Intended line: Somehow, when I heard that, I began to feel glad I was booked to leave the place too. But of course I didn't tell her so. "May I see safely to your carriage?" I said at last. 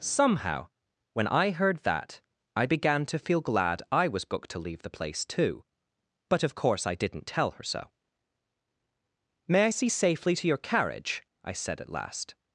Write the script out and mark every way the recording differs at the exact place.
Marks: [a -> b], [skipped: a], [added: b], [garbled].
Somehow, when I heard that, I began to feel glad I was booked to leave the place too. But of course I didn't tell her so. "May I see safely to your carriage?" I said at last.